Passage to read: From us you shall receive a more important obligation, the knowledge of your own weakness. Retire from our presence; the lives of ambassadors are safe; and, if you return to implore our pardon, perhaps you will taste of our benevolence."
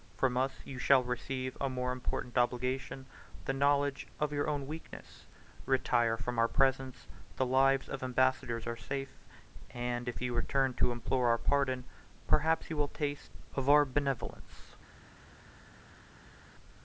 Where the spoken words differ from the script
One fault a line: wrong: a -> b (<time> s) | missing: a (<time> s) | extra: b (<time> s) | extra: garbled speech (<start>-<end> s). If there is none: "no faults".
no faults